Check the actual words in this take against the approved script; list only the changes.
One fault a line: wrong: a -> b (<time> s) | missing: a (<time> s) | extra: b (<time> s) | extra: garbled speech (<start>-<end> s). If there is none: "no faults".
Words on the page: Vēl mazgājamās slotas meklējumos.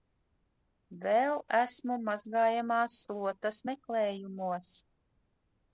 extra: esmu (1.6 s)